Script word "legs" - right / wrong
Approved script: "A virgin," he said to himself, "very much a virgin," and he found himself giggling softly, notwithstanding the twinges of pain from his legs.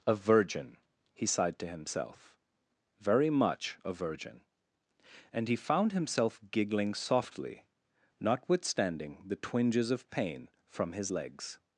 right